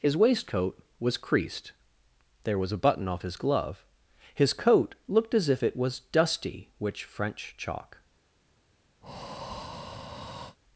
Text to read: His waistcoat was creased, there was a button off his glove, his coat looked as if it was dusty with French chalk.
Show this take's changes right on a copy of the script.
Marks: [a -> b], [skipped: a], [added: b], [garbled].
His waistcoat was creased, there was a button off his glove, his coat looked as if it was dusty [with -> which] French chalk.